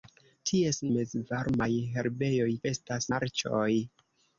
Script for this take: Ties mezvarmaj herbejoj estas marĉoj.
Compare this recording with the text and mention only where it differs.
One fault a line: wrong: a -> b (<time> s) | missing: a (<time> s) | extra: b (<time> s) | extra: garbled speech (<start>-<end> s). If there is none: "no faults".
no faults